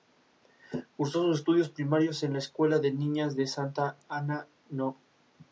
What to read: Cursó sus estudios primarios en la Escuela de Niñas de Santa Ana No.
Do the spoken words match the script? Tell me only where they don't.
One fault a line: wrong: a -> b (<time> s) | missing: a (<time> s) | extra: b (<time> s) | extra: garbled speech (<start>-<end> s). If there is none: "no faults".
no faults